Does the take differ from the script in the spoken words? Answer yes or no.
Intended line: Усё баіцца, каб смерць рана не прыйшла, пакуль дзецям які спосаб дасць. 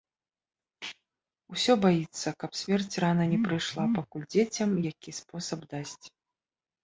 no